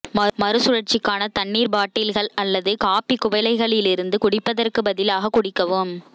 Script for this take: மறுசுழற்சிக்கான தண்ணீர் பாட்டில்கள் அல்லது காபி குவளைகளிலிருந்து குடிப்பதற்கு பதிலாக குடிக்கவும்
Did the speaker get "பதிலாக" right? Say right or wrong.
right